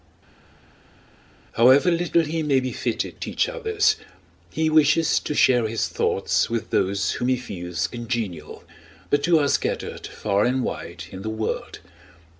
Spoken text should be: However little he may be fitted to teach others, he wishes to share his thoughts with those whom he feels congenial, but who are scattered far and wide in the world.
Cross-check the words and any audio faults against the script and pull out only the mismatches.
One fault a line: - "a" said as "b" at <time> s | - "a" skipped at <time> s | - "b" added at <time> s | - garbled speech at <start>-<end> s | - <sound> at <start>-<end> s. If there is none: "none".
- "to" skipped at 3.2 s